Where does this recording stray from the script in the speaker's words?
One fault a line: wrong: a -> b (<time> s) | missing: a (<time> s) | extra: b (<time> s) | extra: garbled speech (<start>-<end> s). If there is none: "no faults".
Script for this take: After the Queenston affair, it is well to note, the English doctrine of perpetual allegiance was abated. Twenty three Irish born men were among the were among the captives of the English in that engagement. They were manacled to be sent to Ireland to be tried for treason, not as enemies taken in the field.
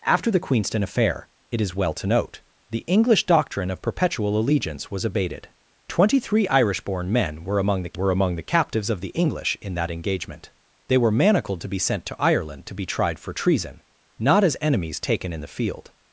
no faults